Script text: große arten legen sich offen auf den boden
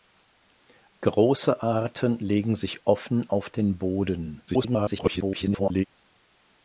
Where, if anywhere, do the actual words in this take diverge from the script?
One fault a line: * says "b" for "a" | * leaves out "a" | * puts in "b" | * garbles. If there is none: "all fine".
* garbles